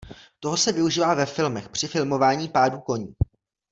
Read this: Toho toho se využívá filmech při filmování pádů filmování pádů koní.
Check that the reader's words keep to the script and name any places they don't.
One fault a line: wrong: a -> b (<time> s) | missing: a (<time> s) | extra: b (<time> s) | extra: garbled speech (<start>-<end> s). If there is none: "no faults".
missing: toho (0.6 s)
extra: ve (1.1 s)
missing: filmování pádů (2.8 s)